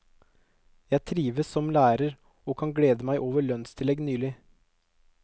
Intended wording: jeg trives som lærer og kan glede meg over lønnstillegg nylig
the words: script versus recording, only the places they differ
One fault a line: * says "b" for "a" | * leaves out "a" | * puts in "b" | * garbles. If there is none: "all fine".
all fine